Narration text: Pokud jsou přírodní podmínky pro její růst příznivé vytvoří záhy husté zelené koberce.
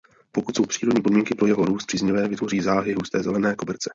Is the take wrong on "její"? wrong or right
wrong